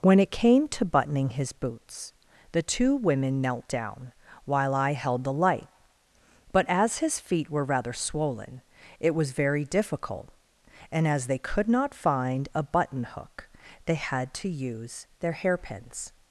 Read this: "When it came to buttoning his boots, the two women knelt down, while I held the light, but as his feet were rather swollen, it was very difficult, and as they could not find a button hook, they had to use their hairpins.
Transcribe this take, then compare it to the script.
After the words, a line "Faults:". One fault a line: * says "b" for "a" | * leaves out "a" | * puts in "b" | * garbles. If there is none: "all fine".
"When it came to buttoning his boots, the two women knelt down, while I held the light, but as his feet were rather swollen, it was very difficult, and as they could not find a button hook, they had to use their hairpins.
Faults:
all fine